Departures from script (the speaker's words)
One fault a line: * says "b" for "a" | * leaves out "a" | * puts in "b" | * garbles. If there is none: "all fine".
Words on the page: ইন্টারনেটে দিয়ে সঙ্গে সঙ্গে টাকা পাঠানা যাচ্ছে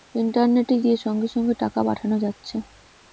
all fine